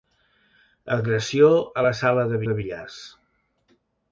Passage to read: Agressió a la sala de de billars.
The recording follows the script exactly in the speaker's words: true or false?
true